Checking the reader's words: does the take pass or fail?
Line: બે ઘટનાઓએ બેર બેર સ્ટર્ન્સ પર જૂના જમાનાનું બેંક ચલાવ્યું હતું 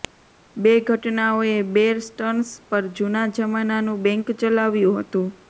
fail